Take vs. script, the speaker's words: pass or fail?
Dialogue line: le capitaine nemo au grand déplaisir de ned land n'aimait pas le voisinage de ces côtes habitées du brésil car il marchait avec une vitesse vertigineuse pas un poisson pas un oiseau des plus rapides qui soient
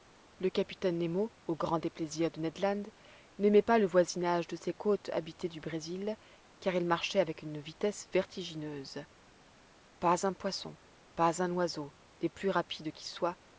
pass